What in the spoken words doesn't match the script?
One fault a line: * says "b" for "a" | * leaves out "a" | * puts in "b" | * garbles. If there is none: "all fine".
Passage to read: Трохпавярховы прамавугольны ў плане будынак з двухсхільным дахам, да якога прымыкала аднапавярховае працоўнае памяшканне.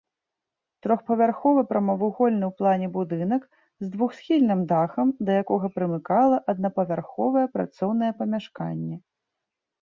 all fine